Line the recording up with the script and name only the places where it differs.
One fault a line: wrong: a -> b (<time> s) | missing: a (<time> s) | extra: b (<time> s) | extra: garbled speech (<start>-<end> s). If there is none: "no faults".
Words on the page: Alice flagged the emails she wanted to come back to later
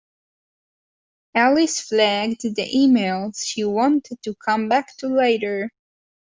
no faults